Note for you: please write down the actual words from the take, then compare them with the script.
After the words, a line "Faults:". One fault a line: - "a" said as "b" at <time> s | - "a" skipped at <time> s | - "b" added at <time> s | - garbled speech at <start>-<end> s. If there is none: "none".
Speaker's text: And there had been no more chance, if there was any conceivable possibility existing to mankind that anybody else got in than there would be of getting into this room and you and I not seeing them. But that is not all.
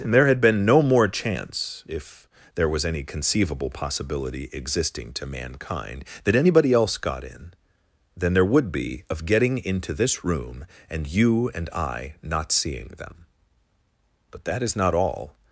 And there had been no more chance, if there was any conceivable possibility existing to mankind that anybody else got in than there would be of getting into this room and you and I not seeing them. But that is not all.
Faults:
none